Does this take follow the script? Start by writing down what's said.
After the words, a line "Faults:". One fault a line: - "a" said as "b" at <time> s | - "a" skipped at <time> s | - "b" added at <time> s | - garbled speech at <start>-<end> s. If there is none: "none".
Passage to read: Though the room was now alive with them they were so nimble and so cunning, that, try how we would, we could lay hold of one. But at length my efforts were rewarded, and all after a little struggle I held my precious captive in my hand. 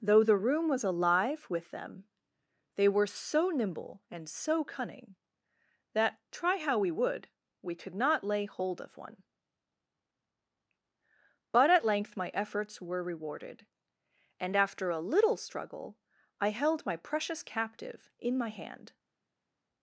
Though the room was alive with them they were so nimble and so cunning, that, try how we would, we could not lay hold of one. But at length my efforts were rewarded, and after a little struggle I held my precious captive in my hand.
Faults:
- "now" skipped at 0.8 s
- "not" added at 7.9 s
- "all" skipped at 14.6 s